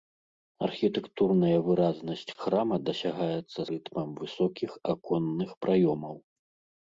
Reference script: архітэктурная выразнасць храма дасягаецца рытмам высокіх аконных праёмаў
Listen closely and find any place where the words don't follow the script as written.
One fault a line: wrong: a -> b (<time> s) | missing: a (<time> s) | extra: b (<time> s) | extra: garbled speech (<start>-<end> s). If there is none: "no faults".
no faults